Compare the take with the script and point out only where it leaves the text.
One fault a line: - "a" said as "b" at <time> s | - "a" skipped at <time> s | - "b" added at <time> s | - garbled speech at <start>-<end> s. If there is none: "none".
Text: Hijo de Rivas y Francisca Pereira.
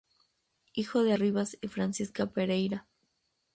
none